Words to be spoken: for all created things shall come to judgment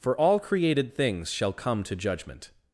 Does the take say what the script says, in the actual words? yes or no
yes